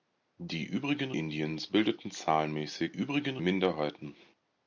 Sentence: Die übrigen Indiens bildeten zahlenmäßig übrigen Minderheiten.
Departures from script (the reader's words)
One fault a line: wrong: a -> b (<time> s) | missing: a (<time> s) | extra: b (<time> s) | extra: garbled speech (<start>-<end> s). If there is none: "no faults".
no faults